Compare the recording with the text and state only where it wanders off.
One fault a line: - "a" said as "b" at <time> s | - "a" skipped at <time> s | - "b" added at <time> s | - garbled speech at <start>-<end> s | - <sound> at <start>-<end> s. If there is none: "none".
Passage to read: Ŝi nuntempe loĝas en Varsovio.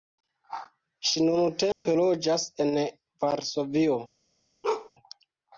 - dropout at 1.7-1.9 s
- bark at 4.6-4.9 s